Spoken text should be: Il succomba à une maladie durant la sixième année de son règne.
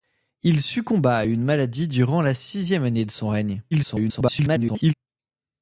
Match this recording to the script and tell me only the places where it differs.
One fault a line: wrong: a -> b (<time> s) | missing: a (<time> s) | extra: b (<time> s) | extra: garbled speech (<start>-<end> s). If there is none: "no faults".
extra: garbled speech (3.7-4.9 s)